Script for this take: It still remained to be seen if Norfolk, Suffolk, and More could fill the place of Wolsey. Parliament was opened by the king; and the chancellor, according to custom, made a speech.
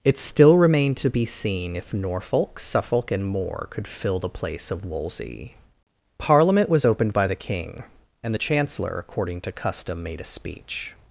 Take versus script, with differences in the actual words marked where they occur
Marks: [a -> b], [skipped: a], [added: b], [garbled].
It still remained to be seen if Norfolk, Suffolk, and More could fill the place of Wolsey. Parliament was opened by the king; and the chancellor, according to custom, made a speech.